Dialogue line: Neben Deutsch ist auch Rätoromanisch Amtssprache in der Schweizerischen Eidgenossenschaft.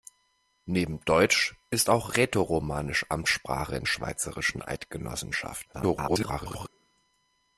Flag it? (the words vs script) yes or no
yes